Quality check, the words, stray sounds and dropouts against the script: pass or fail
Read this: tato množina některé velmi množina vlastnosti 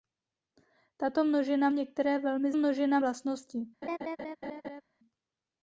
fail